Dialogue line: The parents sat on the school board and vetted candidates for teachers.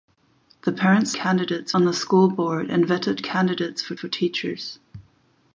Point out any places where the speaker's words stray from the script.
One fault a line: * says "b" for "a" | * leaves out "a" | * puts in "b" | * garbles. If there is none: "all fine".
* says "candidates" for "sat"
* puts in "for"